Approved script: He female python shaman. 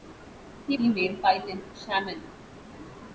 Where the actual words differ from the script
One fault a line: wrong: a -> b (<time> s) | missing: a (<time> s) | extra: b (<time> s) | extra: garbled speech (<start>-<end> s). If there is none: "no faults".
no faults